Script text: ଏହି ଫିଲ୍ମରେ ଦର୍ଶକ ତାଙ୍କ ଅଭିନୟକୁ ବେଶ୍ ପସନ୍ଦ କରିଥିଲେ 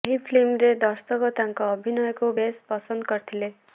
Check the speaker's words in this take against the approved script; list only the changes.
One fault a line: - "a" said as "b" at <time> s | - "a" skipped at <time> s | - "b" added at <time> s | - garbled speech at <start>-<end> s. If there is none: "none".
none